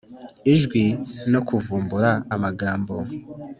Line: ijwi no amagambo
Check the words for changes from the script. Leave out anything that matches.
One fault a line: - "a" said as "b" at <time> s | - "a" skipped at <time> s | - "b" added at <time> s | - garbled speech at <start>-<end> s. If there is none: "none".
- "kuvumbura" added at 1.5 s